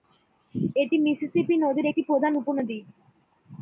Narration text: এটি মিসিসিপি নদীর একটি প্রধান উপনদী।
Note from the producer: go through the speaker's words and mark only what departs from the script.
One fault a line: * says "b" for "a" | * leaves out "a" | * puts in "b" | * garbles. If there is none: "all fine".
all fine